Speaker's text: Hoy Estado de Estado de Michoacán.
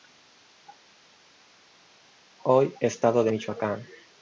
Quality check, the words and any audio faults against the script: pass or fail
fail